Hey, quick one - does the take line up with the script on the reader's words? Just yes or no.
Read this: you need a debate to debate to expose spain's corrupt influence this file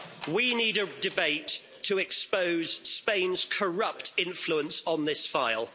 no